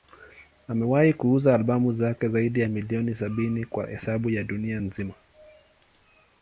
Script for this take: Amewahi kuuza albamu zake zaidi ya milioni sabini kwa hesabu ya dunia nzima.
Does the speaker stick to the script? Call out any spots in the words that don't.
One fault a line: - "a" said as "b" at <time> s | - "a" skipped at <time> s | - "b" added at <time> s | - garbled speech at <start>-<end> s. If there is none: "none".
none